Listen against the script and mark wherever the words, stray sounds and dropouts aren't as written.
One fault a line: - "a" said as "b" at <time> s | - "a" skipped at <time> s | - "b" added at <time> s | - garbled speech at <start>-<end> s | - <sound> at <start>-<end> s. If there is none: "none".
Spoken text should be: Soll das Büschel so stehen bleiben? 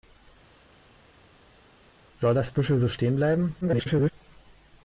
- garbled speech at 3.6-4.1 s